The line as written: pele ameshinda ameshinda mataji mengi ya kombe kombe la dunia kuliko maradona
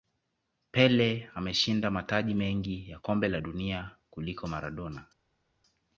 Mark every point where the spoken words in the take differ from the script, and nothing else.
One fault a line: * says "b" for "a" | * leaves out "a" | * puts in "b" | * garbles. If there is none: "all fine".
* leaves out "ameshinda"
* leaves out "kombe"